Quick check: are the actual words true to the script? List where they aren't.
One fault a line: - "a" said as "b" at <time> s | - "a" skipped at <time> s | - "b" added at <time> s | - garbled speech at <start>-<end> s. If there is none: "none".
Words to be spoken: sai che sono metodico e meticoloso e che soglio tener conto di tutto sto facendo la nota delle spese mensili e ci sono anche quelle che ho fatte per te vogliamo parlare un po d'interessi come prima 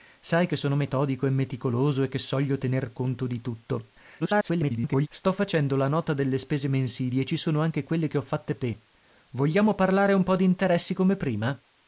- garbled speech at 4.2-5.1 s
- "per" skipped at 8.6 s